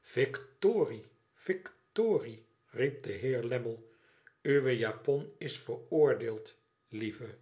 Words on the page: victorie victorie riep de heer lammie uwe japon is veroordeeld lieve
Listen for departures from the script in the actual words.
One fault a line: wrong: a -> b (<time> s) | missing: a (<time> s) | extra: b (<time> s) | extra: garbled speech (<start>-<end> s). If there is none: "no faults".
no faults